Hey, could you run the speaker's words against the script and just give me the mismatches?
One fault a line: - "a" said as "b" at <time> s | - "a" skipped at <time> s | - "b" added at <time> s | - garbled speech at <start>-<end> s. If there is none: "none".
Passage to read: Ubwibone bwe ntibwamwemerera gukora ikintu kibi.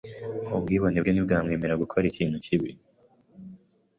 none